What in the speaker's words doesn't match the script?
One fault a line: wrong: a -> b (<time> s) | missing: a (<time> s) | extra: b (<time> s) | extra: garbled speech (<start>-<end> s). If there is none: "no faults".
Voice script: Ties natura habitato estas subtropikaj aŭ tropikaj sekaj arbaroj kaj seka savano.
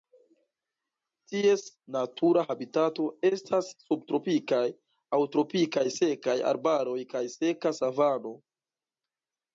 no faults